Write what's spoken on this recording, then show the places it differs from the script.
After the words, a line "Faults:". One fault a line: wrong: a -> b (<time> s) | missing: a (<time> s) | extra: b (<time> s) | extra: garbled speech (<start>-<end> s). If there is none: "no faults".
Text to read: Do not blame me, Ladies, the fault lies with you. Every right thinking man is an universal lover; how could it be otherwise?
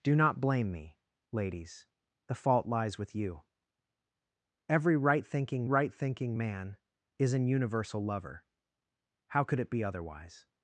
Do not blame me, Ladies, the fault lies with you. Every right thinking right thinking man is an universal lover; how could it be otherwise?
Faults:
extra: right thinking (5.6 s)